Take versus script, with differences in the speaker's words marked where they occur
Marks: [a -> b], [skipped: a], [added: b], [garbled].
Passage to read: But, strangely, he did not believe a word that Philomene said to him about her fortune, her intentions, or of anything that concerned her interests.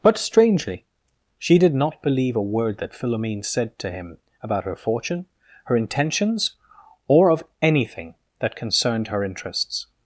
But, strangely, [he -> she] did not believe a word that Philomene said to him about her fortune, her intentions, or of anything that concerned her interests.